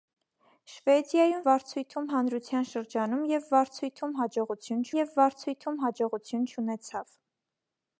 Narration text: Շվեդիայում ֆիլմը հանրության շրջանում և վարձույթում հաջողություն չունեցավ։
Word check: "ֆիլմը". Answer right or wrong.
wrong